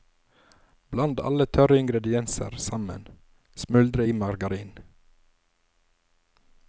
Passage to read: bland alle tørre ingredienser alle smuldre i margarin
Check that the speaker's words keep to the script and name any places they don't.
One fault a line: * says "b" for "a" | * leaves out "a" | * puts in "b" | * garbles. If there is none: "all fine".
* says "sammen" for "alle"